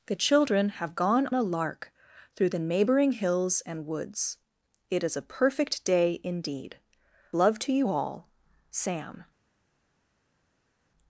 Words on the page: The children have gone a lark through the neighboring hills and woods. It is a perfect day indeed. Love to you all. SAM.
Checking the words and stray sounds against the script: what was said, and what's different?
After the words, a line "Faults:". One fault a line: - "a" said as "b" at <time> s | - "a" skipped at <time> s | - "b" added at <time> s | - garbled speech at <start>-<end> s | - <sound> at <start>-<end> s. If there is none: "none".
The children have gone a lark through the neighboring hills and woods. It is a perfect day indeed. Love to you all. SAM.
Faults:
none